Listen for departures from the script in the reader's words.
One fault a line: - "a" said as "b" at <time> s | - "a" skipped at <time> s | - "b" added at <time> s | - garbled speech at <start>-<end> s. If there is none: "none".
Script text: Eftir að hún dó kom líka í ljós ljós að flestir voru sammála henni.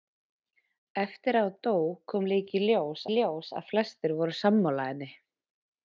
none